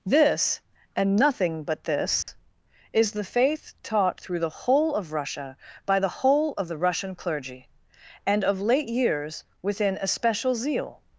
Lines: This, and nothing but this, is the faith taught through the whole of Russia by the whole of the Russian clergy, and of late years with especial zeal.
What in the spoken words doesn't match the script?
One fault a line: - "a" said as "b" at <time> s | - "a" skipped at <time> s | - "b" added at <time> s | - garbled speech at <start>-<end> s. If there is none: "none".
- "with" said as "within" at 9.6 s